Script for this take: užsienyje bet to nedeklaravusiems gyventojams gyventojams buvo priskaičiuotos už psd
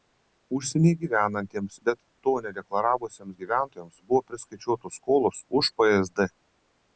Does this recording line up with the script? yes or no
no